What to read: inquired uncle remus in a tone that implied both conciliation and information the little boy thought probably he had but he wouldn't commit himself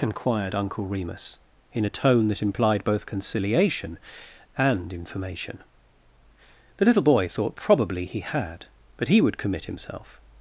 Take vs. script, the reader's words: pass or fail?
fail